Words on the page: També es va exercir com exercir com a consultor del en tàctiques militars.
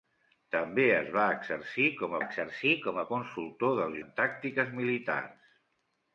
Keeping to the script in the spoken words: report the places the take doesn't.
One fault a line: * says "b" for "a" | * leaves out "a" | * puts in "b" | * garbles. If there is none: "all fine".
all fine